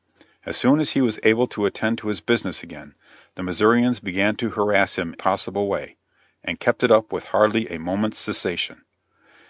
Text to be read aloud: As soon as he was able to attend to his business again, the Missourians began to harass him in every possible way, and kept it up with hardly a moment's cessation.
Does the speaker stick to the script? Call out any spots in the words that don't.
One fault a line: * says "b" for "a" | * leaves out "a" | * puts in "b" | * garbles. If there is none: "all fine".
* leaves out "in every"